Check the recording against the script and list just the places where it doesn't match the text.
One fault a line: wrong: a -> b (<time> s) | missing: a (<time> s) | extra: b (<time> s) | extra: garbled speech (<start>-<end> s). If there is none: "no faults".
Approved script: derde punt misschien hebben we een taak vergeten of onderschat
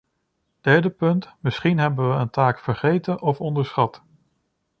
no faults